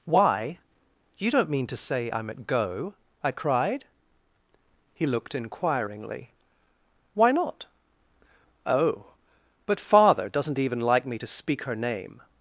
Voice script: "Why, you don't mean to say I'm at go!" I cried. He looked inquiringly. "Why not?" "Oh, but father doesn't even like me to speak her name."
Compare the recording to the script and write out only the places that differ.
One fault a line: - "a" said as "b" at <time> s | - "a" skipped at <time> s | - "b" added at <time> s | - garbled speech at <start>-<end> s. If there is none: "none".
none